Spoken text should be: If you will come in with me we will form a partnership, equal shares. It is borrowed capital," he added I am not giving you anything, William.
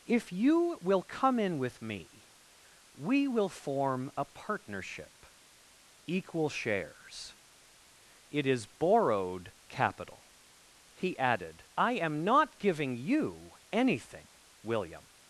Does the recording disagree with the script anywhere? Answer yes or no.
no